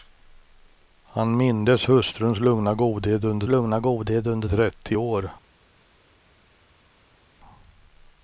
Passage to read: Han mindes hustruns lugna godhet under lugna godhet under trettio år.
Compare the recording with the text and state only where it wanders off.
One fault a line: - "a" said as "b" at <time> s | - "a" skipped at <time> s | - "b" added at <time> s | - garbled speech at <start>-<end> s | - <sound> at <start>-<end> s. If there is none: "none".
none